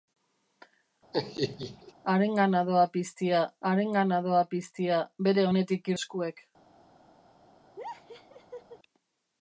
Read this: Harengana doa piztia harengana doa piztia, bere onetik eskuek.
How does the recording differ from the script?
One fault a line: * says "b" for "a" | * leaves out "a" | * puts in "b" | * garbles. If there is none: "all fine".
all fine